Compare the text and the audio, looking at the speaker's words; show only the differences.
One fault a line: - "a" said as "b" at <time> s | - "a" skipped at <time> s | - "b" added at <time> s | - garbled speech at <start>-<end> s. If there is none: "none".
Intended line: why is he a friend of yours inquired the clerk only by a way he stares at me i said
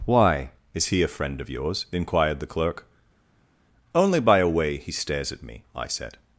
none